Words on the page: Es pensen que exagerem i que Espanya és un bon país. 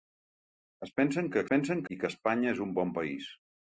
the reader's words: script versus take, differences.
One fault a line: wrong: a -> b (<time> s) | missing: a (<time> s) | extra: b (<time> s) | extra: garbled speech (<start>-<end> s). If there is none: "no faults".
wrong: exagerem -> pensen (1.5 s)